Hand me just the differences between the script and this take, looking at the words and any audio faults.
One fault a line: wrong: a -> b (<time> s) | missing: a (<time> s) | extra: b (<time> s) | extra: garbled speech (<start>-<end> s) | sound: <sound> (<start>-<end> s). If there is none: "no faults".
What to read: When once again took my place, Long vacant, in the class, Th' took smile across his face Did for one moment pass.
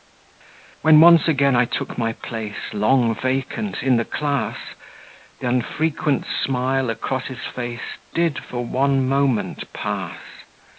extra: I (1.5 s)
wrong: took -> unfrequent (5.4 s)